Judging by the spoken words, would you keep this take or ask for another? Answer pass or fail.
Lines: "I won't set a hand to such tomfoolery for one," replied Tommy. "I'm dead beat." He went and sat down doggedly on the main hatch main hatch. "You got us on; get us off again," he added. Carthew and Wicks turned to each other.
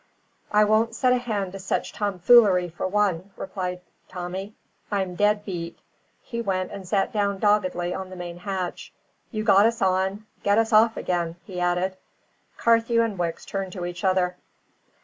fail